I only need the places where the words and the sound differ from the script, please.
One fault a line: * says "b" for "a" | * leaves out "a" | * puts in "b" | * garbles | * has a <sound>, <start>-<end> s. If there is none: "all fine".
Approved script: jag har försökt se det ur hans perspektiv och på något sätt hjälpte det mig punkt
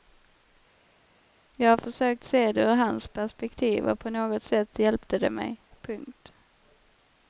all fine